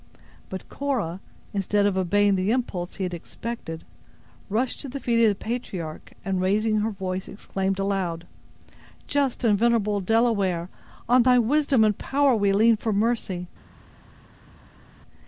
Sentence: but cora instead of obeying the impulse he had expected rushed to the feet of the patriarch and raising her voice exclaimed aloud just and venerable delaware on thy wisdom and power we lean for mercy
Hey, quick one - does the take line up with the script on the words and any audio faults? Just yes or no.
yes